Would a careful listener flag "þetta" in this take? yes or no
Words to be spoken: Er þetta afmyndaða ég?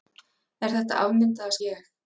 no